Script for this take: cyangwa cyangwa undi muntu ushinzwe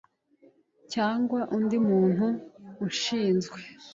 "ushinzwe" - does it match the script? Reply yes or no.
yes